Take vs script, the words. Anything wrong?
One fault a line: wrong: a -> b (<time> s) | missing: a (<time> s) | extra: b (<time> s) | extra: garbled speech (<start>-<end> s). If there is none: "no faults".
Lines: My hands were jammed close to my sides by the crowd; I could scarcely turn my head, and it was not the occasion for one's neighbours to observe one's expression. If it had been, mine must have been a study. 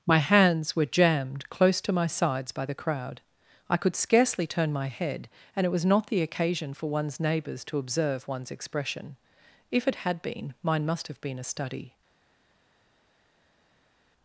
no faults